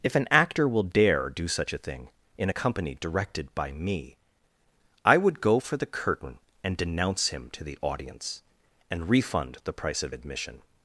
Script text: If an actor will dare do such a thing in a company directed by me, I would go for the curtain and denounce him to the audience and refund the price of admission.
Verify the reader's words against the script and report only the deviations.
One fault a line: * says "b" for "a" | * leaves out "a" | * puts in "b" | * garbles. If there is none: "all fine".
all fine